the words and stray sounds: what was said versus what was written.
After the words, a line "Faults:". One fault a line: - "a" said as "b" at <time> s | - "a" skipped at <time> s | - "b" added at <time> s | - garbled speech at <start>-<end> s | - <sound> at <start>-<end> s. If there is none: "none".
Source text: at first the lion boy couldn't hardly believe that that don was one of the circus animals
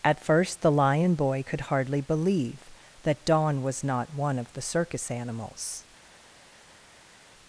at first the lion boy could hardly believe that don was not one of the circus animals
Faults:
- "couldn't" said as "could" at 1.4 s
- "that" skipped at 3.2 s
- "not" added at 3.8 s